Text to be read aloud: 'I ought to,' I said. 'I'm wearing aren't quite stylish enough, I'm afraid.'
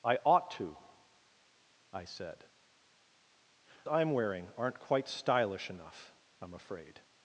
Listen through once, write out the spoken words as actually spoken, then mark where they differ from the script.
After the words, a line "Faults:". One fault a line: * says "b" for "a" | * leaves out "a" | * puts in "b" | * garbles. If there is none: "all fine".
'I ought to,' I said. 'I'm wearing aren't quite stylish enough, I'm afraid.'
Faults:
all fine